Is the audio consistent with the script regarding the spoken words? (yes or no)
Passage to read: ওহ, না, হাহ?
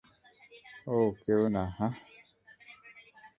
no